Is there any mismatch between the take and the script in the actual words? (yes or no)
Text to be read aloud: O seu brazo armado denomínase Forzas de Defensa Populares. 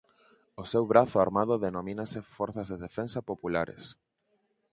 no